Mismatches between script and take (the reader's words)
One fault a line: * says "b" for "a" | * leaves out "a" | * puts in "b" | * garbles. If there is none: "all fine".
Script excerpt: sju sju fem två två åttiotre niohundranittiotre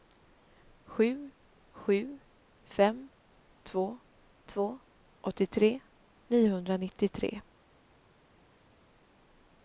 all fine